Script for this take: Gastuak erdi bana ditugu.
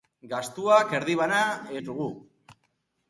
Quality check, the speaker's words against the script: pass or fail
pass